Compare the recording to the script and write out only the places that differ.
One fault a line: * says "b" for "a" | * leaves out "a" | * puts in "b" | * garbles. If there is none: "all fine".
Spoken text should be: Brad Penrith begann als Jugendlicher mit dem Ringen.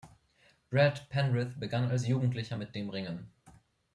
all fine